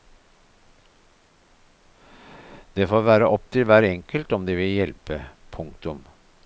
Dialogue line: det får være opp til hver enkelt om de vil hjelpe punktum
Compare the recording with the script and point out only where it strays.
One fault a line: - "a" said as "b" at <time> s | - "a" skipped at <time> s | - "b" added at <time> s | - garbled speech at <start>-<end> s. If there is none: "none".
none